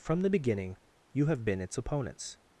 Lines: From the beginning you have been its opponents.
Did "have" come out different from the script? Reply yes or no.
no